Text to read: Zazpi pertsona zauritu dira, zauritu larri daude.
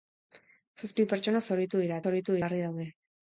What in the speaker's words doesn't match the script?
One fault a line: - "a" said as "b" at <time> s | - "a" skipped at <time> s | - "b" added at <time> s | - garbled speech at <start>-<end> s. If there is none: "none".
none